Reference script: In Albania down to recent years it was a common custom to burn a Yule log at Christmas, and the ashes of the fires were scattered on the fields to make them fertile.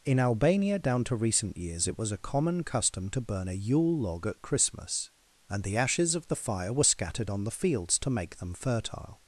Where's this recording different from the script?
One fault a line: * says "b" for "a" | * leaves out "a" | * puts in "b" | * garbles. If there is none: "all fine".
* says "fire" for "fires"